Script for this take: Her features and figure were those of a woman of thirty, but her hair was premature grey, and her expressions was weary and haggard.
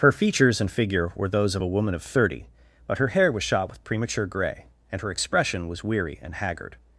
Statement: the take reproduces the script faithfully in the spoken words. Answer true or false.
false